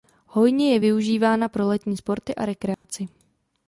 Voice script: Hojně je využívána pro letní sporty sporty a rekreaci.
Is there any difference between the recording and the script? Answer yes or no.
yes